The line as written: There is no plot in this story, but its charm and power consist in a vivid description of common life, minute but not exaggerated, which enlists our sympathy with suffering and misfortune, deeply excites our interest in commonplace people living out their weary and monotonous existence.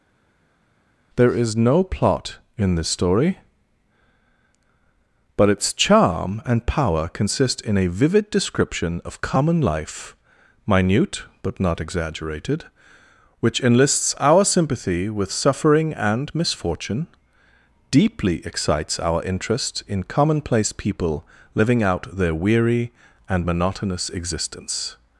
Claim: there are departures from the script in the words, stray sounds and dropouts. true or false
false